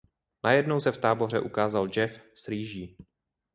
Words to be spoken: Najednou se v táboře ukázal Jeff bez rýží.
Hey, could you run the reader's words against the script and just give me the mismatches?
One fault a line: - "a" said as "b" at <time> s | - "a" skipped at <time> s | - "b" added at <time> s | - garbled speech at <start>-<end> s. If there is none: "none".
- "bez" said as "s" at 2.3 s